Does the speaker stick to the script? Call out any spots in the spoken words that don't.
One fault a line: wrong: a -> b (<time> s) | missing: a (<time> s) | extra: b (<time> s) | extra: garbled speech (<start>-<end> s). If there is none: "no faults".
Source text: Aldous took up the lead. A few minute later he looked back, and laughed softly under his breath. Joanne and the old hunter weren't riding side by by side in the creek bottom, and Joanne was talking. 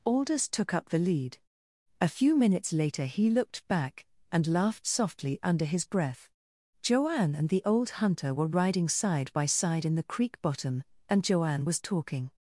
wrong: minute -> minutes (2.4 s)
wrong: weren't -> were (8.3 s)
missing: by (9.4 s)